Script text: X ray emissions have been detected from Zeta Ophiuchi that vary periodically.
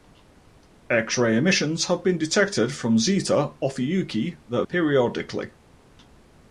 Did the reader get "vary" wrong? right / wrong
wrong